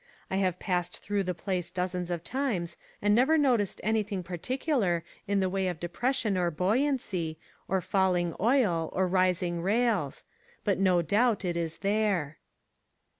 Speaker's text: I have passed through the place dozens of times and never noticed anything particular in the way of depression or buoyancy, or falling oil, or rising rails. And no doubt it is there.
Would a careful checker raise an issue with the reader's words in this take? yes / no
yes